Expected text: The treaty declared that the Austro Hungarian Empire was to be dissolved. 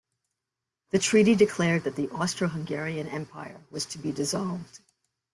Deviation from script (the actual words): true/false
false